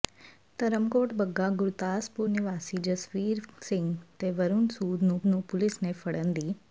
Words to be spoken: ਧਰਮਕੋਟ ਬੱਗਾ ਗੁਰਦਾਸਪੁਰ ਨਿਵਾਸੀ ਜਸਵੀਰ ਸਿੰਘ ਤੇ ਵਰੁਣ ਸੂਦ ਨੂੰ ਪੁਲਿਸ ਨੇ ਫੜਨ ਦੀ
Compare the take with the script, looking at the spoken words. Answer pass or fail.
fail